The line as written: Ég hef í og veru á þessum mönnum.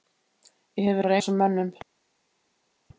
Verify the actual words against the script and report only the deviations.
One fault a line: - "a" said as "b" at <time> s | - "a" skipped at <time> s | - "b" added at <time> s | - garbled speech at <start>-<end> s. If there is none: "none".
none